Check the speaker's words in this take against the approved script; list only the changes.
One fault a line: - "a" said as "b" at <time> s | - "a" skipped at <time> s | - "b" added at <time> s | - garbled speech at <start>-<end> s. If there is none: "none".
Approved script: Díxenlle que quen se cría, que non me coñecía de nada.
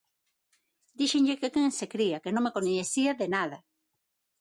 none